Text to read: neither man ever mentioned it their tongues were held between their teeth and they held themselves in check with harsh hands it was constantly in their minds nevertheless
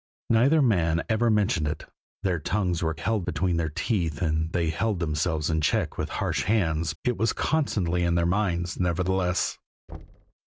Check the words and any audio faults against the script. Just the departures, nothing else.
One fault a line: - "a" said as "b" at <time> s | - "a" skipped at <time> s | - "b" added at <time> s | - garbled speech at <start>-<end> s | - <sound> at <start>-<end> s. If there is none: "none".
- thud at 9.9-10.3 s